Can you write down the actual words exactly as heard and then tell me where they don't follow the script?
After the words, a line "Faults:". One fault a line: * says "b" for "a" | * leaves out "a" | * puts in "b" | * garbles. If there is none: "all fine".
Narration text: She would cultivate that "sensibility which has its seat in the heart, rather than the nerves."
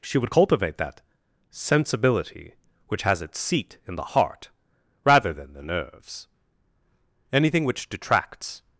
She would cultivate that "sensibility which has its seat in the heart, rather than the nerves." Anything which detracts
Faults:
* puts in "Anything which detracts"